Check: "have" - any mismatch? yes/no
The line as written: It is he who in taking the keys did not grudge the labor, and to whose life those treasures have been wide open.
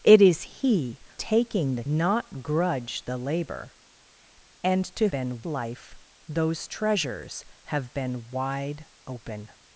no